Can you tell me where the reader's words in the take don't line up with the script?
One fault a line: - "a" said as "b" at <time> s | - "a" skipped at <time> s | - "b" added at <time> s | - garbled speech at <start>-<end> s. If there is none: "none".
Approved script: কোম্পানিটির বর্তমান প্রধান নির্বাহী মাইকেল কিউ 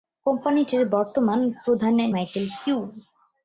- "নির্বাহী" skipped at 1.9 s